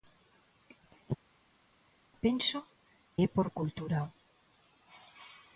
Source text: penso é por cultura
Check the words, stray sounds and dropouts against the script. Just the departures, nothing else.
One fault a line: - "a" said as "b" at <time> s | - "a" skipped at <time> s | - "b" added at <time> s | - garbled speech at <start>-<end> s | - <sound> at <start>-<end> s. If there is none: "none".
none